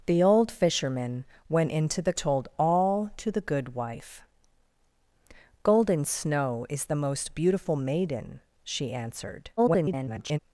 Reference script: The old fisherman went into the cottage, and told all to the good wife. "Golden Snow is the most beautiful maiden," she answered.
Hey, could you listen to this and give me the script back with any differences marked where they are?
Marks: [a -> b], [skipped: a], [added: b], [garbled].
The old fisherman went into the [skipped: cottage, and] told all to the good wife. "Golden Snow is the most beautiful maiden," she answered. [garbled]